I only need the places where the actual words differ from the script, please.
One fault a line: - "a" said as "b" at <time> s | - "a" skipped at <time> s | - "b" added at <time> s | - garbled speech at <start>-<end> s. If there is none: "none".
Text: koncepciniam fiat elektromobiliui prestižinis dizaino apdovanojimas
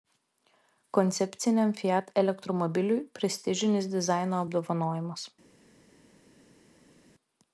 none